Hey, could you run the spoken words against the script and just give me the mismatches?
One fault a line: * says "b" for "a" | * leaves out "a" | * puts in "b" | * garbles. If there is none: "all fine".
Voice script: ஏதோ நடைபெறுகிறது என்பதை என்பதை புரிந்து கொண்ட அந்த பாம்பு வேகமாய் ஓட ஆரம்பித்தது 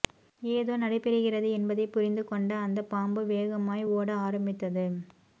* leaves out "என்பதை"